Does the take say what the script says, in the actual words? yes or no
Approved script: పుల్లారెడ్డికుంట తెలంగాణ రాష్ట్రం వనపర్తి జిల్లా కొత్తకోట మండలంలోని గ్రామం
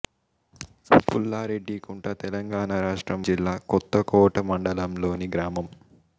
no